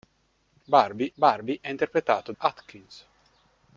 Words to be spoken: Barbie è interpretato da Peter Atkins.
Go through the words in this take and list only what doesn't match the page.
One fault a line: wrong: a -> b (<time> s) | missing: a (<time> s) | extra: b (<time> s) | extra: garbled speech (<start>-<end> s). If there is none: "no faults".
extra: barbie (1.1 s)
missing: da Peter (2.3 s)